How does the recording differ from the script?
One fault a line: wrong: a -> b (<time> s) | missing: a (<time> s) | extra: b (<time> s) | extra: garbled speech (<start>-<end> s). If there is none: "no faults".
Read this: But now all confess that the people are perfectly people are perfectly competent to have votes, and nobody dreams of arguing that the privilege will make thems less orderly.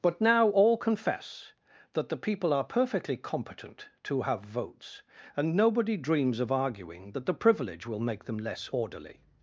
missing: people are perfectly (3.2 s)
wrong: thems -> them (8.2 s)